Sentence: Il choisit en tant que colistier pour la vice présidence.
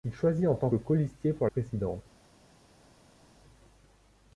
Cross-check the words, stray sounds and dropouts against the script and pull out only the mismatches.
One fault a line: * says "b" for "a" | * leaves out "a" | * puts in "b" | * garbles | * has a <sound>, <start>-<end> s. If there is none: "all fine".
* leaves out "que"
* leaves out "la vice"